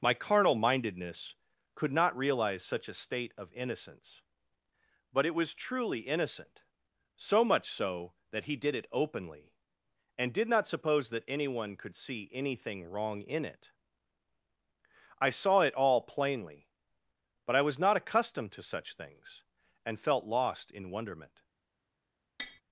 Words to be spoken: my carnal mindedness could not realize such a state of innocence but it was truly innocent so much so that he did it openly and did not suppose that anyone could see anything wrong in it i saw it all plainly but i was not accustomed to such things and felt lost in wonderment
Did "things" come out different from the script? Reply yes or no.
no